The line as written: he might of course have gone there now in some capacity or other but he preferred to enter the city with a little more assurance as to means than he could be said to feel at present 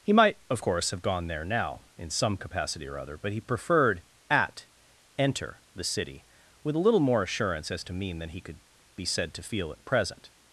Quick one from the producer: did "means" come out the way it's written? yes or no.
no